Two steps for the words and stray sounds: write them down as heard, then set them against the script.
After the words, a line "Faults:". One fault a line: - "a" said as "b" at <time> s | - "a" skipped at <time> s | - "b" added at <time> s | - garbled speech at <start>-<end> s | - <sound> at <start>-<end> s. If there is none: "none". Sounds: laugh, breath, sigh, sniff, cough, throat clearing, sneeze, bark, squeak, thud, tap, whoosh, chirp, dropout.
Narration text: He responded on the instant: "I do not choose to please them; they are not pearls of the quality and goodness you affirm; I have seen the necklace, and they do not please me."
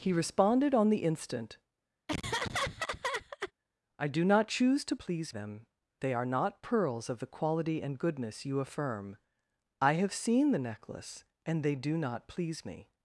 He responded on the instant: "I do not choose to please them; they are not pearls of the quality and goodness you affirm; I have seen the necklace, and they do not please me."
Faults:
- laugh at 2.1-3.5 s